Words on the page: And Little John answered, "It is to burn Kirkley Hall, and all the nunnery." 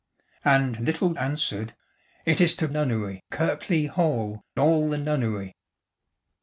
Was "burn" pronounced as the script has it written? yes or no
no